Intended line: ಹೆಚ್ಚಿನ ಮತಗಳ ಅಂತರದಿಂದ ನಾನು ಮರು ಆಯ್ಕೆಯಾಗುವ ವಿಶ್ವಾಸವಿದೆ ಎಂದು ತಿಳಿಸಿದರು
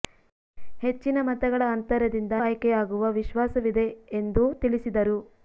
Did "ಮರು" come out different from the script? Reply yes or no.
yes